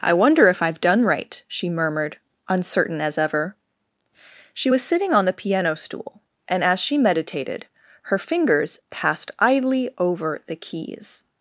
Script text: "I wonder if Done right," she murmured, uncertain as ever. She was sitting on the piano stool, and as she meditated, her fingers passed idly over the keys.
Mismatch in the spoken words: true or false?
true